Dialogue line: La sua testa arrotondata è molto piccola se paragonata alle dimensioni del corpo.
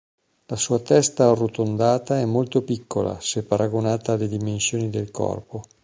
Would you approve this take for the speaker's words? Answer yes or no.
yes